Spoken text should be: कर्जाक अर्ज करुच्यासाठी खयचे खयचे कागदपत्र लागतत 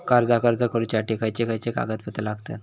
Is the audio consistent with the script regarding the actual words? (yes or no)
yes